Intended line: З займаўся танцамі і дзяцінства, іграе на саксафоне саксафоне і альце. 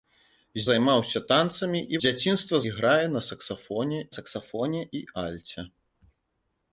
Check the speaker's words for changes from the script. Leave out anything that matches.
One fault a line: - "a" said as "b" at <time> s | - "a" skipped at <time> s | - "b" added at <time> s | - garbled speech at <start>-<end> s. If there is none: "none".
none